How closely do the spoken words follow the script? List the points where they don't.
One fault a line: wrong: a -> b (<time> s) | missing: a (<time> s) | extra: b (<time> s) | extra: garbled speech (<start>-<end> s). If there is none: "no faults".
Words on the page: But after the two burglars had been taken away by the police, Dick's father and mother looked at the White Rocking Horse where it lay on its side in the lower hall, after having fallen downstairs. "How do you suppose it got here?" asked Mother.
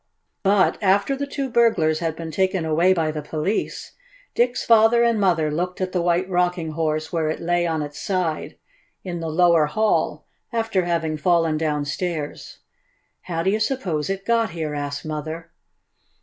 no faults